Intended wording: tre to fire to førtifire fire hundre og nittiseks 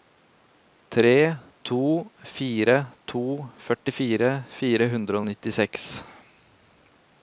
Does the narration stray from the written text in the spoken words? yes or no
no